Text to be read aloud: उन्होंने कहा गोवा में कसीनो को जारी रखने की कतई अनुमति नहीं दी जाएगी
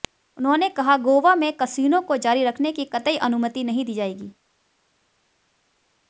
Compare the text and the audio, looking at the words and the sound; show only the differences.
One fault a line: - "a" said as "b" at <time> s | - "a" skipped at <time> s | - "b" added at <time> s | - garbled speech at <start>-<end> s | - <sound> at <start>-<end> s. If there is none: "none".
none